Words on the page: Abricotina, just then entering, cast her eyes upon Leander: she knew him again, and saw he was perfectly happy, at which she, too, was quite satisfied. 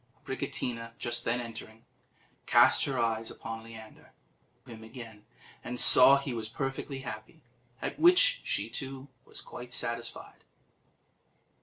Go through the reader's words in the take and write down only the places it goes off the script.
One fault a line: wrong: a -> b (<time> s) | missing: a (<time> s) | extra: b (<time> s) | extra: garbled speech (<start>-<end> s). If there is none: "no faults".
missing: she knew (4.1 s)